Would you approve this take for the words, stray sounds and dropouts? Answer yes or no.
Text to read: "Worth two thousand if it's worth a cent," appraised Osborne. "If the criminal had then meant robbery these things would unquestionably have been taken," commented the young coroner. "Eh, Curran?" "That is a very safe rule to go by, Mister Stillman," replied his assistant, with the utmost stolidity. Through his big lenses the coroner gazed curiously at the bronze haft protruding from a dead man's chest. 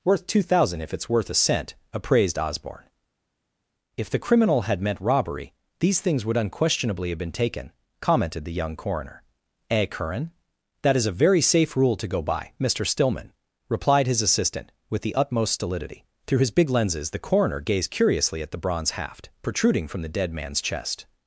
no